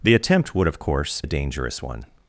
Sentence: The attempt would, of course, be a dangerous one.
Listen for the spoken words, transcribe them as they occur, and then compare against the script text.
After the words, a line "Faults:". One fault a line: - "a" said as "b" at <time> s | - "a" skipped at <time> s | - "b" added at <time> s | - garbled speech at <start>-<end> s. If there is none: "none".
The attempt would, of course, a dangerous one.
Faults:
- "be" skipped at 1.2 s